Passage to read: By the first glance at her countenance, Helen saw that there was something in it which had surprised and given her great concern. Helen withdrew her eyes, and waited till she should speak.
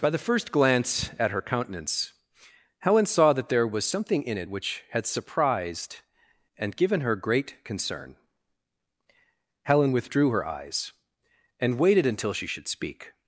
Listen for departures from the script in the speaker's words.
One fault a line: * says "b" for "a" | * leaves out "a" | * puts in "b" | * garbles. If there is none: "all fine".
* says "until" for "till"